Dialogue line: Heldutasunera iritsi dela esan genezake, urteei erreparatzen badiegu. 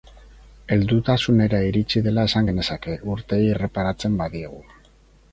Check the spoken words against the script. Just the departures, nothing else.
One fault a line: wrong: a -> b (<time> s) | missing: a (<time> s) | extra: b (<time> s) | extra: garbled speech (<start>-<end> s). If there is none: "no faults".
no faults